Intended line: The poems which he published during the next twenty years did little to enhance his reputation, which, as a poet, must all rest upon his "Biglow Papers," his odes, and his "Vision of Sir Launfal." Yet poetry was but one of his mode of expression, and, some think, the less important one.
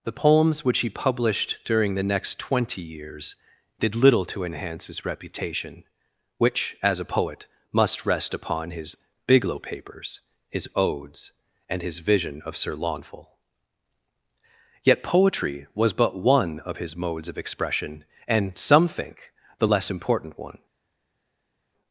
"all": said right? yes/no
no